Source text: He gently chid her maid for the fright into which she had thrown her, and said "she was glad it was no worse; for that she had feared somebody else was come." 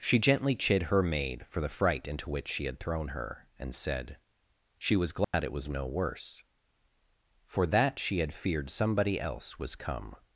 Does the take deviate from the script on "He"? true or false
true